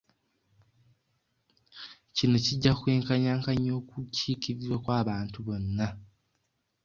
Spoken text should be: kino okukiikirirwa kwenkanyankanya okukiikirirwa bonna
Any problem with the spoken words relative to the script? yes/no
yes